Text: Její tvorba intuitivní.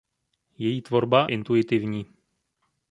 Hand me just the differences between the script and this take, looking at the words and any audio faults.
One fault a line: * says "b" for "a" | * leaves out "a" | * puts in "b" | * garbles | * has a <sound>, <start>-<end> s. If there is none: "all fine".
all fine